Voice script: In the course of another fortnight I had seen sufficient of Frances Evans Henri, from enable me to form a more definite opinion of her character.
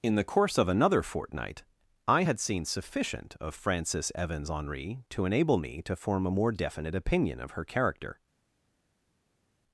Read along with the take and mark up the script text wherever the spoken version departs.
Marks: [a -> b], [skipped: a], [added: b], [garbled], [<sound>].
In the course of another fortnight I had seen sufficient of Frances Evans Henri, [from -> to] enable me to form a more definite opinion of her character.